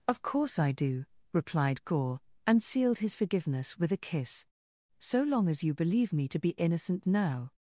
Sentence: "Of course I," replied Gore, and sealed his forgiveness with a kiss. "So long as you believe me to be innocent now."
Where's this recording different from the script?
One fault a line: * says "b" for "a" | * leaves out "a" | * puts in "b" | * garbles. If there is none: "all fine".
* puts in "do"